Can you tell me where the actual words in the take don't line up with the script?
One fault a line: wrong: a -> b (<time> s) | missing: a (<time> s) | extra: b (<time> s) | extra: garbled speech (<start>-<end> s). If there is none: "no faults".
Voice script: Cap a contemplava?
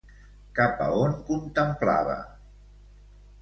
extra: on (1.0 s)